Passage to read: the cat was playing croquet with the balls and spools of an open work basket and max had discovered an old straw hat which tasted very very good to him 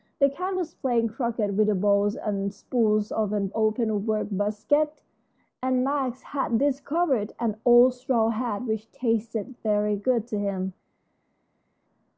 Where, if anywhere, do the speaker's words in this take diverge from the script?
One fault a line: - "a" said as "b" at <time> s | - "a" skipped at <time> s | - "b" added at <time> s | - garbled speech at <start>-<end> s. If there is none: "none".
- "very" skipped at 9.9 s